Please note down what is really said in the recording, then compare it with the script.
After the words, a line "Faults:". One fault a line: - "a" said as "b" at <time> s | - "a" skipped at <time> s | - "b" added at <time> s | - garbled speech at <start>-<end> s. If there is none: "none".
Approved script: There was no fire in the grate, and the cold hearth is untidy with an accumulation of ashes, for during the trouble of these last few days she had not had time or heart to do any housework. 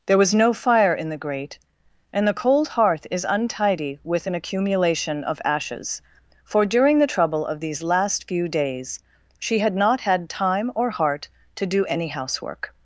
There was no fire in the grate, and the cold hearth is untidy with an accumulation of ashes, for during the trouble of these last few days she had not had time or heart to do any housework.
Faults:
none